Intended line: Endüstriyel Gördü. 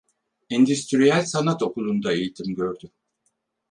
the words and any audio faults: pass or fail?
fail